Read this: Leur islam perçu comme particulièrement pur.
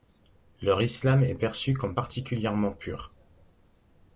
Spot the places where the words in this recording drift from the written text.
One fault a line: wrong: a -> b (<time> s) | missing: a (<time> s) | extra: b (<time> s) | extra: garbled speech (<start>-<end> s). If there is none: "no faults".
extra: est (1.2 s)